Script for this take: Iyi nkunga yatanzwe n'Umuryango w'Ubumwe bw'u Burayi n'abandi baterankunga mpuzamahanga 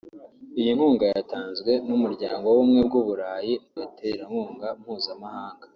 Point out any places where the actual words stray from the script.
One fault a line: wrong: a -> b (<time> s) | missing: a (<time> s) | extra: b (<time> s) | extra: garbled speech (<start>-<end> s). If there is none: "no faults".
missing: n'abandi (3.5 s)